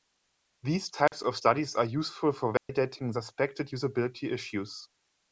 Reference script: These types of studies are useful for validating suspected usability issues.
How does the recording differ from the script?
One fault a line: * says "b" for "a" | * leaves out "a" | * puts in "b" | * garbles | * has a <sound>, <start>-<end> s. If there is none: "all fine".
* has a dropout, 1.1-1.1 s
* has a dropout, 2.6-2.7 s